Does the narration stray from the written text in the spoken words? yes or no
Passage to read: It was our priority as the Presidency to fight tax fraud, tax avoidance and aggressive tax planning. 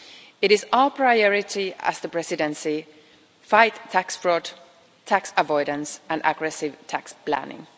yes